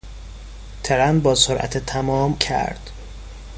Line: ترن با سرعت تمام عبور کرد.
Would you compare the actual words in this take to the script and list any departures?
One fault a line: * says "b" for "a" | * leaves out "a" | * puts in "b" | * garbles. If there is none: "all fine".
* leaves out "عبور"